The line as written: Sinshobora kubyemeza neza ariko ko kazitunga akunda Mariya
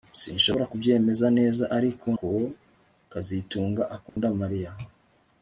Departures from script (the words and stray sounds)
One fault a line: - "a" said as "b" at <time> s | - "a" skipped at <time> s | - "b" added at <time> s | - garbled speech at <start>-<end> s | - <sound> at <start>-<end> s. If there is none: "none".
- dropout at 4.1-4.2 s